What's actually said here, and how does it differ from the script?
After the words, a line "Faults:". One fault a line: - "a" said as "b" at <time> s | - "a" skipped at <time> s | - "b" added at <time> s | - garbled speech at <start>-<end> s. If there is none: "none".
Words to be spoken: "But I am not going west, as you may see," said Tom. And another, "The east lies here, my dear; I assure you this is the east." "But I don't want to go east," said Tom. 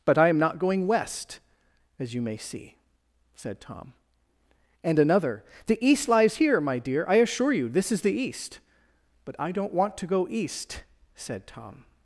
"But I am not going west, as you may see," said Tom. And another, "The east lies here, my dear; I assure you this is the east." "But I don't want to go east," said Tom.
Faults:
none